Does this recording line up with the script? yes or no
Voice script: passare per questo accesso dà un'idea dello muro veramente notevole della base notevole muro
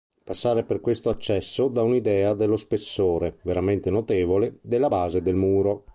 no